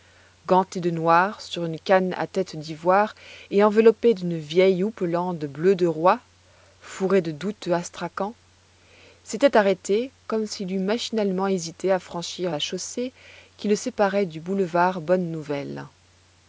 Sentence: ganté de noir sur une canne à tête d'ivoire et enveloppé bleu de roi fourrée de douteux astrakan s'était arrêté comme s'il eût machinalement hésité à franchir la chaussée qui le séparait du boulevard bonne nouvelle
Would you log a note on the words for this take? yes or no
yes